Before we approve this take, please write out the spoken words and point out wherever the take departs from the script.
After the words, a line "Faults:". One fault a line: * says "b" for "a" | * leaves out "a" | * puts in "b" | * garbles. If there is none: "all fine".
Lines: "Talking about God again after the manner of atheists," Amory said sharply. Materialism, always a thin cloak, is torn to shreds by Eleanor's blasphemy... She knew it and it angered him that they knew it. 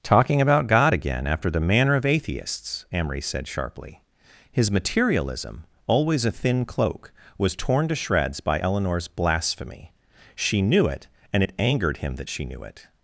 "Talking about God again after the manner of atheists," Amory said sharply. His materialism, always a thin cloak, was torn to shreds by Eleanor's blasphemy... She knew it and it angered him that she knew it.
Faults:
* puts in "His"
* says "was" for "is"
* says "she" for "they"